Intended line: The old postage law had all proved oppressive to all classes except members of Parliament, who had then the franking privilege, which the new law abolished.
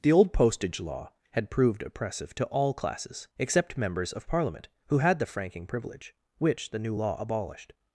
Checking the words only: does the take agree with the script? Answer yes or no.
no